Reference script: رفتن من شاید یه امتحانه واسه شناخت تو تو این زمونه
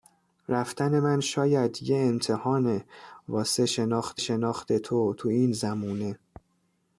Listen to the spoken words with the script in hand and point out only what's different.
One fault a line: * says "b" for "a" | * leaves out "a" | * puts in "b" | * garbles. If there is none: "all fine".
* puts in "شناخت"